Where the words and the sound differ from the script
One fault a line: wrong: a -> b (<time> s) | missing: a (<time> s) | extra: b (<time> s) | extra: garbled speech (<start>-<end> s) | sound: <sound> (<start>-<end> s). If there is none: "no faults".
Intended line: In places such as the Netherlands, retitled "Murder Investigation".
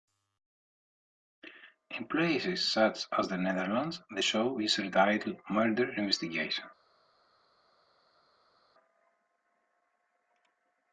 extra: the show is (4.1 s)